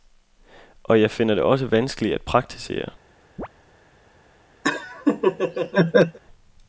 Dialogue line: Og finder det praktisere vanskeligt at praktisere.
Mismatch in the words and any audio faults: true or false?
true